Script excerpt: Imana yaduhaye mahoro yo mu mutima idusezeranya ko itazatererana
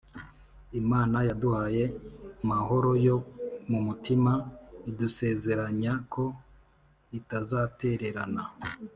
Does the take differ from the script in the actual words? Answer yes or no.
no